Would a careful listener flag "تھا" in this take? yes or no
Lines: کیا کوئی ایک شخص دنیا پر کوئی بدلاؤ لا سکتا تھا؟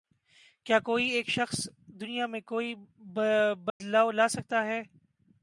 yes